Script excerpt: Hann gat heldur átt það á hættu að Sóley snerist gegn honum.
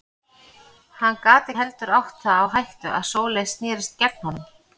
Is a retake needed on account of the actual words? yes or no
no